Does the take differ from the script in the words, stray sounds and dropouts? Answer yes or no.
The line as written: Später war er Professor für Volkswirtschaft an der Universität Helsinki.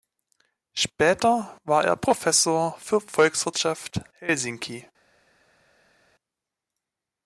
yes